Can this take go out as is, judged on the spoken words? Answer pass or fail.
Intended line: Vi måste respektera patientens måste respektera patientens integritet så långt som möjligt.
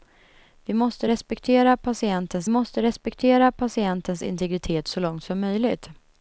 pass